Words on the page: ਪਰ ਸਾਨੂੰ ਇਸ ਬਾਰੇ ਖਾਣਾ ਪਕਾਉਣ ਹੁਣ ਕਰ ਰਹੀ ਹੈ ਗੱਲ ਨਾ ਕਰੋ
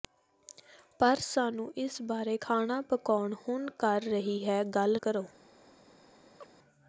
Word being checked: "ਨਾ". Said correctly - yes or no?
no